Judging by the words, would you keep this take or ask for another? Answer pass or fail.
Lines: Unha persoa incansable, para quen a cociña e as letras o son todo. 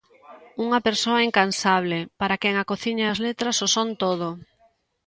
pass